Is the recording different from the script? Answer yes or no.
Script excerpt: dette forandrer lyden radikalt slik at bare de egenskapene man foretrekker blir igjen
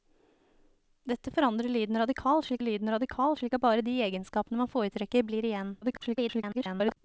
yes